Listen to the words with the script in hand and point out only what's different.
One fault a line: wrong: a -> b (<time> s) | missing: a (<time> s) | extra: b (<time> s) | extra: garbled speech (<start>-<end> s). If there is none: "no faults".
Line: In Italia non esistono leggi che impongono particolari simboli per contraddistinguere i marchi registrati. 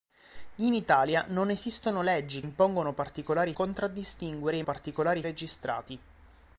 missing: che (2.4 s)
missing: simboli per (3.5 s)
wrong: marchi -> particolari (4.6 s)